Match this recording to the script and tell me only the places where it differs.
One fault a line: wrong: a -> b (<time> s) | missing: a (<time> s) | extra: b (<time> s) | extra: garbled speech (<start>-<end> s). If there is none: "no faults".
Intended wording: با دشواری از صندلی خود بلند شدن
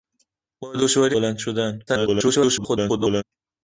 missing: از صندلی خود (1.2 s)
extra: garbled speech (1.9-3.2 s)